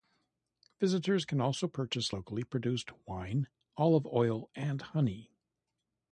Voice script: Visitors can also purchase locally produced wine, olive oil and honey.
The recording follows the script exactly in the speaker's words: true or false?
true